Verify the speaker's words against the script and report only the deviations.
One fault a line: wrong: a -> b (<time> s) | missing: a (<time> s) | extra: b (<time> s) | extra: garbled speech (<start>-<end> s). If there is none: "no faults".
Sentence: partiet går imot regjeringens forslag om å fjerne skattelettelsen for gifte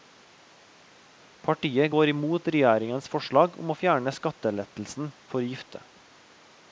no faults